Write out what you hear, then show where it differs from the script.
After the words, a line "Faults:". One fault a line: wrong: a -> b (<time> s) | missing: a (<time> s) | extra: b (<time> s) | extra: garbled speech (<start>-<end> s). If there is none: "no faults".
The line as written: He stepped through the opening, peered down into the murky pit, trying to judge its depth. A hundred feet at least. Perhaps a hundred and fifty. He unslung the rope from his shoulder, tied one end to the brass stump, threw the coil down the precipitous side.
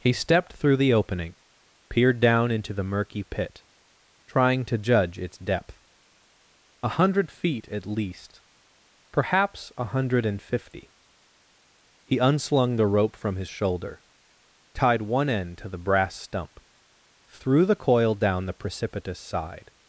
He stepped through the opening, peered down into the murky pit, trying to judge its depth. A hundred feet at least. Perhaps a hundred and fifty. He unslung the rope from his shoulder, tied one end to the brass stump, threw the coil down the precipitous side.
Faults:
no faults